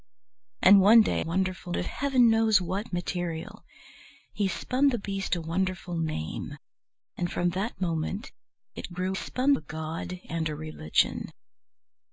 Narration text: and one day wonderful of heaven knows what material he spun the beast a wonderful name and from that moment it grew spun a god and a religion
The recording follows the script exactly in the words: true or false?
true